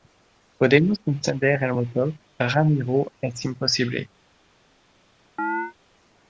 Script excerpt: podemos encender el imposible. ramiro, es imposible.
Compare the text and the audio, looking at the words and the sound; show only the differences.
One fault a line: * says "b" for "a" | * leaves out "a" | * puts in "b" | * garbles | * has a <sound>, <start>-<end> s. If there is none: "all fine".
* says "motor" for "imposible"
* has a chirp, 5.4-5.7 s